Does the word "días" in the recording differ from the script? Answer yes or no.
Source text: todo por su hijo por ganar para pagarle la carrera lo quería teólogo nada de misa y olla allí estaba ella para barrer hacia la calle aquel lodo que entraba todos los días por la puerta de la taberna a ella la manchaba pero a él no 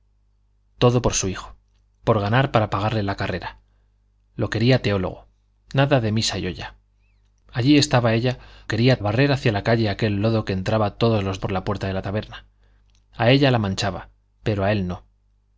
yes